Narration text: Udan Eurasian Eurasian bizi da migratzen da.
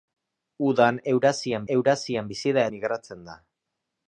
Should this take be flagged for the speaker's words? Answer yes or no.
no